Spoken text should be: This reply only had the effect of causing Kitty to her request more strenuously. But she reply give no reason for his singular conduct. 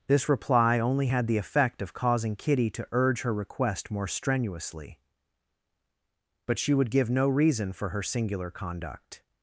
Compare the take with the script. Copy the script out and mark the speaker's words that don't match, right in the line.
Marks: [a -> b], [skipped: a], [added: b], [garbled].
This reply only had the effect of causing Kitty to [added: urge] her request more strenuously. But she [reply -> would] give no reason for [his -> her] singular conduct.